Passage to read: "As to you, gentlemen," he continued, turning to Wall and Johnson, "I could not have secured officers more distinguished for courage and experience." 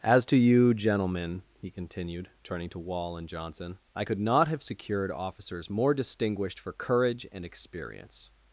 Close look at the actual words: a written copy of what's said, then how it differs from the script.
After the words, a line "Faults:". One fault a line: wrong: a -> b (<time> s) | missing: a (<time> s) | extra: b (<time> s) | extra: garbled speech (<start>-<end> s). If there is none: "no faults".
"As to you, gentlemen," he continued, turning to Wall and Johnson, "I could not have secured officers more distinguished for courage and experience."
Faults:
no faults